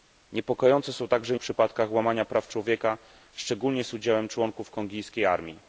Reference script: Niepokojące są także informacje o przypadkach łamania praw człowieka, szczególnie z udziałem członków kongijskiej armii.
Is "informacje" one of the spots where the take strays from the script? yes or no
yes